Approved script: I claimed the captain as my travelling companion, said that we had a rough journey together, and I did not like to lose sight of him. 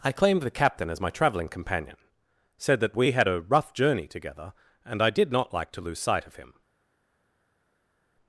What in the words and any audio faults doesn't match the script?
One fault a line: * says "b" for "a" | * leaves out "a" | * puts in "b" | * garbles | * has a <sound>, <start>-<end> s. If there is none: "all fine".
all fine